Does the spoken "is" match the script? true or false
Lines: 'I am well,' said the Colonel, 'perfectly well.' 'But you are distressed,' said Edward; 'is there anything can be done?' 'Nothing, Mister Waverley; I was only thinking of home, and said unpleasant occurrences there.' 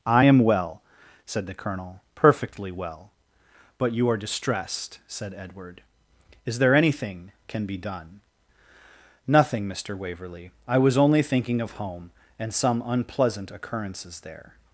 true